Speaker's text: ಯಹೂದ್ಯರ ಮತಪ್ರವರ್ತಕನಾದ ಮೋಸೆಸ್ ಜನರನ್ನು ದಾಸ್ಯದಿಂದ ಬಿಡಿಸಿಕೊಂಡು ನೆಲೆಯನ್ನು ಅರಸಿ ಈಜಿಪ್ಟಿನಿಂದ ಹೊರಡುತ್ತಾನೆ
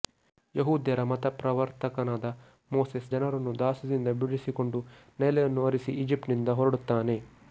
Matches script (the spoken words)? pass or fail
pass